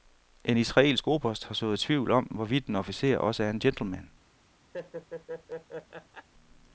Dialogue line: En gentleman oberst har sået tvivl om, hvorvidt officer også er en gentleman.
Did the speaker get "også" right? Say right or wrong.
right